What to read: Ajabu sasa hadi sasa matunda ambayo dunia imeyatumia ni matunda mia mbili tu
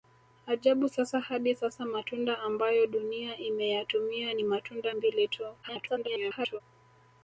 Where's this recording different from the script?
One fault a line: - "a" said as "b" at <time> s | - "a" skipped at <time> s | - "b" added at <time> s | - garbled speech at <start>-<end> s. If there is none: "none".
- "mia" skipped at 5.0 s
- garbled speech at 5.6-6.6 s